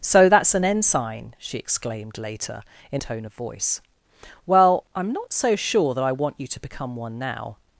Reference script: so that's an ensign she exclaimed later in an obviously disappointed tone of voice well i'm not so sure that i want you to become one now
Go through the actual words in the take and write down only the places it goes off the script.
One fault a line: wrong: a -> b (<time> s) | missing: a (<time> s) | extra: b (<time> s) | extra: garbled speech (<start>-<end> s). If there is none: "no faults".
missing: an obviously disappointed (3.0 s)